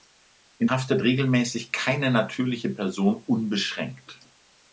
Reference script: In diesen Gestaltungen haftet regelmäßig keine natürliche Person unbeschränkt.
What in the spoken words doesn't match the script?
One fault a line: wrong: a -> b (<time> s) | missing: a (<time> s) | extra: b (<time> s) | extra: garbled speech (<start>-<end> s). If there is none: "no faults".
missing: diesen Gestaltungen (0.7 s)